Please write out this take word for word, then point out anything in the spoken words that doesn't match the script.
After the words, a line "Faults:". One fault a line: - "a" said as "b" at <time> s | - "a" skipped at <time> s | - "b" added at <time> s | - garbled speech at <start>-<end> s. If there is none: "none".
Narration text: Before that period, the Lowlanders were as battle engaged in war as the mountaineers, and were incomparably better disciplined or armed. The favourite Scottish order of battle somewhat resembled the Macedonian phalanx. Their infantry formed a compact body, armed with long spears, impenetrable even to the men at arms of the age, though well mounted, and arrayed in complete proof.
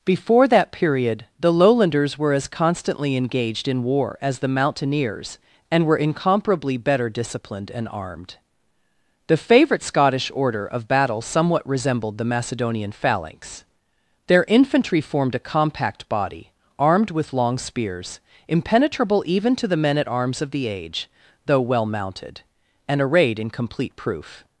Before that period, the Lowlanders were as constantly engaged in war as the mountaineers, and were incomparably better disciplined and armed. The favourite Scottish order of battle somewhat resembled the Macedonian phalanx. Their infantry formed a compact body, armed with long spears, impenetrable even to the men at arms of the age, though well mounted, and arrayed in complete proof.
Faults:
- "battle" said as "constantly" at 2.5 s
- "or" said as "and" at 7.7 s